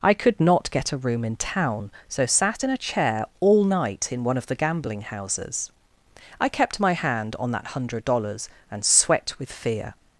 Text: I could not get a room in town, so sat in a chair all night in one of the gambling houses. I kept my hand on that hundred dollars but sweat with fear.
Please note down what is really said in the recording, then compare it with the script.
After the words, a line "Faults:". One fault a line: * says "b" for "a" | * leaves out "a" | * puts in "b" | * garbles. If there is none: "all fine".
I could not get a room in town, so sat in a chair all night in one of the gambling houses. I kept my hand on that hundred dollars and sweat with fear.
Faults:
* says "and" for "but"